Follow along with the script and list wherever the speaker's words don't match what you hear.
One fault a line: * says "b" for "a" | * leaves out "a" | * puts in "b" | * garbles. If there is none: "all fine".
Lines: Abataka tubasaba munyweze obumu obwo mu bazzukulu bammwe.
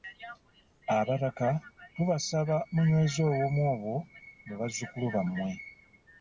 all fine